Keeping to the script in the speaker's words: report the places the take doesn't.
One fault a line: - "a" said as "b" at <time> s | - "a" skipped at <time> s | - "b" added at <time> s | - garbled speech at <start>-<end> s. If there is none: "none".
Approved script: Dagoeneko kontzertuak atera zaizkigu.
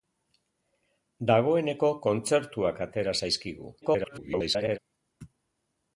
- garbled speech at 3.8-4.8 s